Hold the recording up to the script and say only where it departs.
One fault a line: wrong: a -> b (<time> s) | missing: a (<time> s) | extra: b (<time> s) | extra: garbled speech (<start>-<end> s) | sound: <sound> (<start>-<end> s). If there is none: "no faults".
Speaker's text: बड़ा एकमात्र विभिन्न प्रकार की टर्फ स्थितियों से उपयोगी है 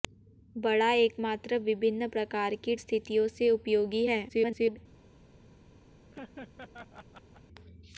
missing: टर्फ (2.8 s)
extra: garbled speech (4.3-4.8 s)
sound: laugh (6.1-7.4 s)